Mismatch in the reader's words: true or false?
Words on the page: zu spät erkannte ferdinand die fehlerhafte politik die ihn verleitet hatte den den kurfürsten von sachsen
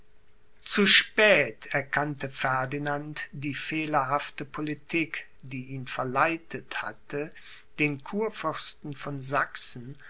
true